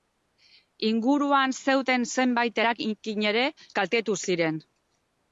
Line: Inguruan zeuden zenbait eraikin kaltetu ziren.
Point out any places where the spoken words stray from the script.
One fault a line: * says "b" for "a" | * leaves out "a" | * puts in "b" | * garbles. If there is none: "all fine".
* puts in "ere"